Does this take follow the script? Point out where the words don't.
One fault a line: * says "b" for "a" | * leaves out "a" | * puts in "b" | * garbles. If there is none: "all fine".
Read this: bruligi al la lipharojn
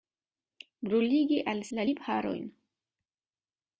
all fine